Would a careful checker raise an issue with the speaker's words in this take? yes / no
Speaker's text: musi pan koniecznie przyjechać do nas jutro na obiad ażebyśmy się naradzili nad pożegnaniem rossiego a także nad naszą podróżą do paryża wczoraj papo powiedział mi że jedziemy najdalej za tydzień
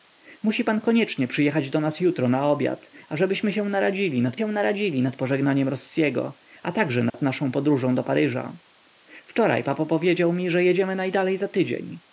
yes